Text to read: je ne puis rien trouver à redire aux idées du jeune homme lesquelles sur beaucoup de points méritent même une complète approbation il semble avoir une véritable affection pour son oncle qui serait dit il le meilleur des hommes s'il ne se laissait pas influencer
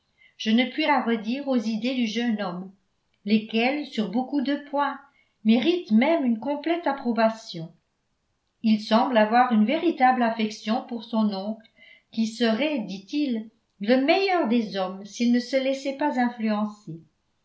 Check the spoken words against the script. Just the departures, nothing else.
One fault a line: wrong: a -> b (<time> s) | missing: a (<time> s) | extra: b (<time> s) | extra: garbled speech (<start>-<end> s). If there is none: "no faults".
missing: rien trouver (0.9 s)